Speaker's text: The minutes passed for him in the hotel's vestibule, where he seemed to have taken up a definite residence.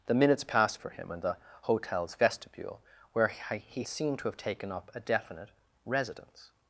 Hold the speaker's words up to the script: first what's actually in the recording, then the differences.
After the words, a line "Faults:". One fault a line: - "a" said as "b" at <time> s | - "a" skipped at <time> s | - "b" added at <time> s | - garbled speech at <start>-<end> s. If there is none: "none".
The minutes passed for him in the hotel's vestibule, where he seemed to have taken up a definite residence.
Faults:
none